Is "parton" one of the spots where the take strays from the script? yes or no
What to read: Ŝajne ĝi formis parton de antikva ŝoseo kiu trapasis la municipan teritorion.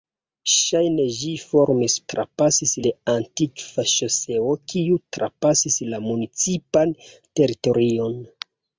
yes